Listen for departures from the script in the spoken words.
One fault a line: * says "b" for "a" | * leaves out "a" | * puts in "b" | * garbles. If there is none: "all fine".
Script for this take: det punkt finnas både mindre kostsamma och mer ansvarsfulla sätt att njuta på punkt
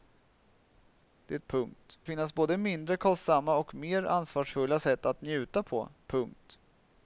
all fine